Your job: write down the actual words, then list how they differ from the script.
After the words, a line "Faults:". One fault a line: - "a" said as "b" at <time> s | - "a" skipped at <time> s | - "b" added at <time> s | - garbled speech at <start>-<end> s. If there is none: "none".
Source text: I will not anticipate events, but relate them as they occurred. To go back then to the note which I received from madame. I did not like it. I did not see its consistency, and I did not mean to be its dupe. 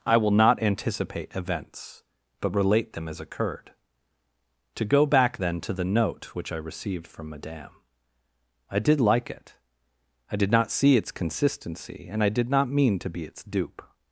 I will not anticipate events, but relate them as occurred. To go back then to the note which I received from madame. I did like it. I did not see its consistency, and I did not mean to be its dupe.
Faults:
- "they" skipped at 3.2 s
- "not" skipped at 9.0 s